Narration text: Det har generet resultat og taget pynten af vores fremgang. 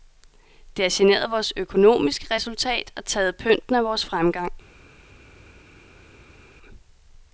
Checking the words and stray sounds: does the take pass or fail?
fail